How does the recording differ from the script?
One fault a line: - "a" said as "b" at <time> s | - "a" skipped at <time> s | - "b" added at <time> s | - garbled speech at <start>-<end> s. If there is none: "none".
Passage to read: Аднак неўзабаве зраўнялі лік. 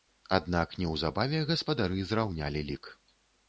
- "гаспадары" added at 1.5 s